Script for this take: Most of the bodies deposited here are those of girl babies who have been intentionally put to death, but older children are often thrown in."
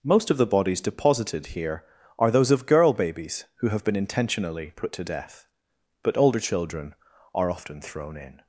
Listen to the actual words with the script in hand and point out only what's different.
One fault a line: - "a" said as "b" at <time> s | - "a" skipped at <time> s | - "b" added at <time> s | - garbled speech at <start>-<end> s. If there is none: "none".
none